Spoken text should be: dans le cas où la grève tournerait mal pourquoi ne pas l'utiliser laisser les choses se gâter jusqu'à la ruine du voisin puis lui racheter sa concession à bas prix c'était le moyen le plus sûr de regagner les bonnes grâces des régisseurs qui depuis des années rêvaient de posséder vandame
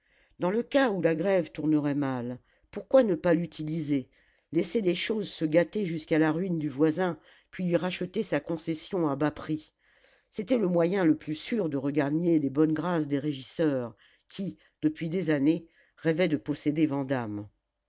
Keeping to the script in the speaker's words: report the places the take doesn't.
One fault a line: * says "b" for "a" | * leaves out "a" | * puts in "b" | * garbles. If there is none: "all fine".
all fine